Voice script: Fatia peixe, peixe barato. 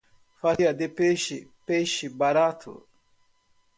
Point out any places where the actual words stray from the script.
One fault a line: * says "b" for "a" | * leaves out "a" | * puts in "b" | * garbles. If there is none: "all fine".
* puts in "de"